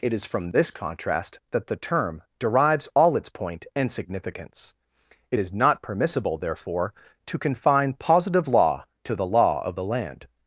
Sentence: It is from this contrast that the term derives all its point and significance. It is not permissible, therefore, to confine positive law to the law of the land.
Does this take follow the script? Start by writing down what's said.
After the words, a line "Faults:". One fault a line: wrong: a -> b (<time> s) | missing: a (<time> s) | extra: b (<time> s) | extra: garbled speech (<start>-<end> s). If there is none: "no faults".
It is from this contrast that the term derives all its point and significance. It is not permissible, therefore, to confine positive law to the law of the land.
Faults:
no faults